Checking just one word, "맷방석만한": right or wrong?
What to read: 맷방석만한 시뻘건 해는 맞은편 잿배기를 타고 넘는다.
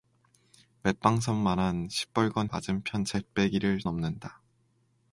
right